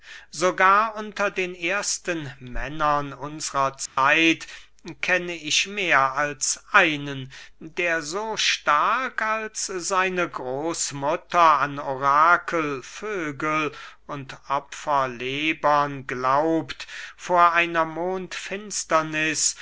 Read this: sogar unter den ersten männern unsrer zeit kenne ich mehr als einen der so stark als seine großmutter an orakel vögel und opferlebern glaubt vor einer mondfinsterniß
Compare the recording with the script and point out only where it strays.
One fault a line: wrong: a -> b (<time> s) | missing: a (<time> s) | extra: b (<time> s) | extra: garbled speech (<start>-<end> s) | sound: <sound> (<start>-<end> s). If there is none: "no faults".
sound: dropout (3.9-4.0 s)